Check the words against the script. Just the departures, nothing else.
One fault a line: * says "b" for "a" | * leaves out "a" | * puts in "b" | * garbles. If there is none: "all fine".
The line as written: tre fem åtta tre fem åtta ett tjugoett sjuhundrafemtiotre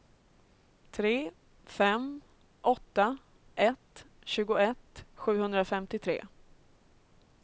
* leaves out "tre fem åtta"